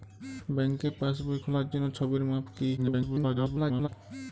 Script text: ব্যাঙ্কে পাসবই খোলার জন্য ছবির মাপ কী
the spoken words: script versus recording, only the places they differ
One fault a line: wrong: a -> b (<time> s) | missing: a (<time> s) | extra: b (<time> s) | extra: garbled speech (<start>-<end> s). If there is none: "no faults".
extra: garbled speech (2.8-3.9 s)